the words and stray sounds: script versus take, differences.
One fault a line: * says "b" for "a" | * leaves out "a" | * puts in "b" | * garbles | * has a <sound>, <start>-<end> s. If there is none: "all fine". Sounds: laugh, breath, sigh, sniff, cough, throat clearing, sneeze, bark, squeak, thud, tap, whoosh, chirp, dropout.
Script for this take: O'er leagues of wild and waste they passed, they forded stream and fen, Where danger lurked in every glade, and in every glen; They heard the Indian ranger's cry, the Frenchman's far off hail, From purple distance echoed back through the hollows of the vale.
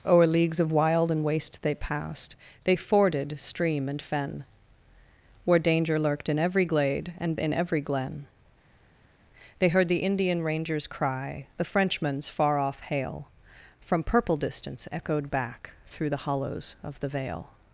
all fine